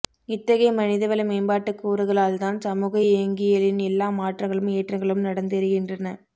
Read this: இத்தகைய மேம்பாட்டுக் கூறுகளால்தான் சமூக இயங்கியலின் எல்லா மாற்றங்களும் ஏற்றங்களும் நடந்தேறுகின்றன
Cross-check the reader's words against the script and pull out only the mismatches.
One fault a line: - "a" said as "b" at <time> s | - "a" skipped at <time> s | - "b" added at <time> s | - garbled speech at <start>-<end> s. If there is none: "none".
- "மனிதவள" added at 0.8 s